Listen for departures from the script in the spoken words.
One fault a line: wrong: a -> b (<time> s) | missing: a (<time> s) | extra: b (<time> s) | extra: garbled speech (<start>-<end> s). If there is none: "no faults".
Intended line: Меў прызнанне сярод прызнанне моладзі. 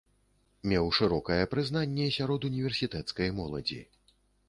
extra: шырокае (1.0 s)
wrong: прызнанне -> універсітэцкай (2.5 s)